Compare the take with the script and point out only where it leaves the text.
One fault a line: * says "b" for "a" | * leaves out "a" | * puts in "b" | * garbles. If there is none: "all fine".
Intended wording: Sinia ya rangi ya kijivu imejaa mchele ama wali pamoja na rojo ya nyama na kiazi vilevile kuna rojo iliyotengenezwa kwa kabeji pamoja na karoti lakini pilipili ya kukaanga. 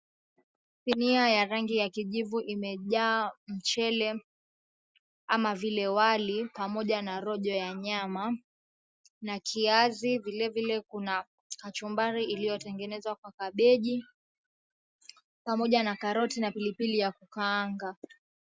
* puts in "vile"
* says "kachumbari" for "rojo"
* says "na" for "lakini"